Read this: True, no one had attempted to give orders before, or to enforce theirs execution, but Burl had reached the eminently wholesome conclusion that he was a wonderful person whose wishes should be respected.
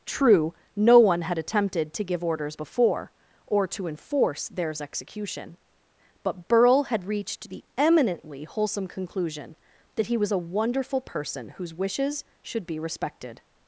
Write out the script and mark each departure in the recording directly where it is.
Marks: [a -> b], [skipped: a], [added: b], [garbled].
True, no one had attempted to give orders before, or to enforce theirs execution, but Burl had reached the eminently wholesome conclusion that he was a wonderful person whose wishes should be respected.